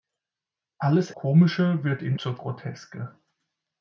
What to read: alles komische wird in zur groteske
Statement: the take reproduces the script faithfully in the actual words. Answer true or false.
true